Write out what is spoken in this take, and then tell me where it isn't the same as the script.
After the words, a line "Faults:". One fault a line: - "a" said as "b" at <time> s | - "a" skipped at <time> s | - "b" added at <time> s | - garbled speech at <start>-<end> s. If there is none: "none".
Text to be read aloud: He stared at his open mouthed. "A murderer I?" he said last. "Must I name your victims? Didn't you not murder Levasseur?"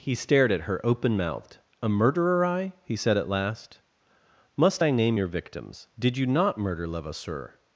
He stared at her open mouthed. "A murderer I?" he said at last. "Must I name your victims? Did you not murder Levasseur?"
Faults:
- "his" said as "her" at 0.6 s
- "at" added at 3.2 s
- "Didn't" said as "Did" at 6.0 s